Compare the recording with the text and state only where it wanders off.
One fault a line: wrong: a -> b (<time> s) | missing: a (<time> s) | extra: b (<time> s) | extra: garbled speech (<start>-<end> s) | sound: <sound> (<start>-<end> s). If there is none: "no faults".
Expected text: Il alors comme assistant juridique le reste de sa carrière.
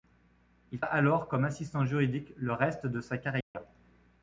sound: dropout (3.4-3.6 s)